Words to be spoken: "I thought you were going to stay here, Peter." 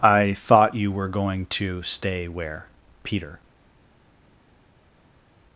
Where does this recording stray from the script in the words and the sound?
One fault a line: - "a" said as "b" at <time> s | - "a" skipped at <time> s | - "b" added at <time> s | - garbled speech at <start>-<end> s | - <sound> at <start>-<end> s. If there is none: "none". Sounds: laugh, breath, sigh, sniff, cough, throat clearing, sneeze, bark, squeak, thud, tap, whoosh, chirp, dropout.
- "here" said as "where" at 2.3 s